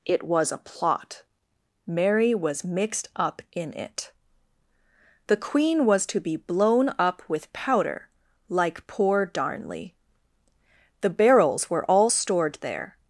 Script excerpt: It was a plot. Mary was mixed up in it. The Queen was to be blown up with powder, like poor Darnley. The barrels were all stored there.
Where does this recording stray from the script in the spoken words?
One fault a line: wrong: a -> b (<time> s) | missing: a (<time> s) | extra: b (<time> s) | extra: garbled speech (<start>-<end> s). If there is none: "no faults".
no faults